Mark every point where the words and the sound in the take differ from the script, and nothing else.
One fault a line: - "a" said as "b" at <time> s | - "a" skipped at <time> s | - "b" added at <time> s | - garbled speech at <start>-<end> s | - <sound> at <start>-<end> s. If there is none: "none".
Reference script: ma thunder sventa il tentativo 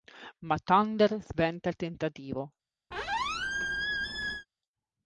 - squeak at 2.9-4.5 s